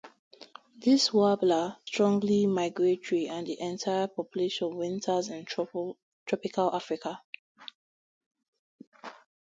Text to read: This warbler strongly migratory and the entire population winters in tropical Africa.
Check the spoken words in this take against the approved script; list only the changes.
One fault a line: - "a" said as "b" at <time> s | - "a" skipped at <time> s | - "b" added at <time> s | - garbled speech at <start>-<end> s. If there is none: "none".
none